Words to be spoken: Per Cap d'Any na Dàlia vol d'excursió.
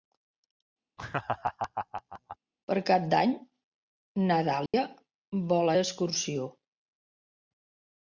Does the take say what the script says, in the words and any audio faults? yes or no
no